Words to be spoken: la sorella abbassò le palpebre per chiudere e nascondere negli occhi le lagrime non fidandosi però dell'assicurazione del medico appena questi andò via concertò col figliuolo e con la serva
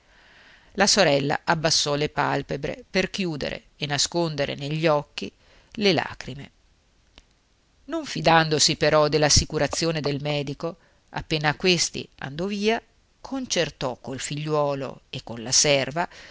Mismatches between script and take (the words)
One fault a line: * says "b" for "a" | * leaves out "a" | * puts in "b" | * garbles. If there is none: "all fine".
all fine